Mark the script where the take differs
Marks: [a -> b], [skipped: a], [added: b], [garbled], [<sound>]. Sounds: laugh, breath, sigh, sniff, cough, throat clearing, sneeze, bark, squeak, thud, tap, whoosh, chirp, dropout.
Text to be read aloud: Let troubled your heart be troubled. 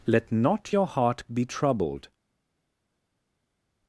Let [troubled -> not] your heart be troubled.